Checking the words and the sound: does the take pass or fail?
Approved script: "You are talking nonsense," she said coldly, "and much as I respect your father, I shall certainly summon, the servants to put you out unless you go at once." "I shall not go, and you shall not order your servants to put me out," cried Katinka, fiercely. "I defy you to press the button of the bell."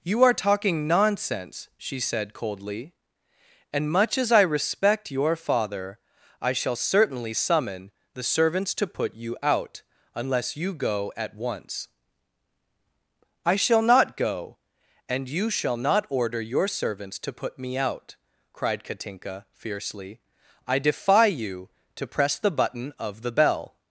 pass